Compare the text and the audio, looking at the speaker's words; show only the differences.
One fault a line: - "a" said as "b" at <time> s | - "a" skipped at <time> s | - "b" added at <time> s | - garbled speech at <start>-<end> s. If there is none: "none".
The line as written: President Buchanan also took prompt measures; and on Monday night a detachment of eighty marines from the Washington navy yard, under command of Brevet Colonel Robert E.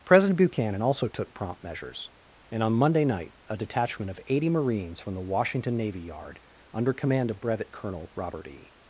none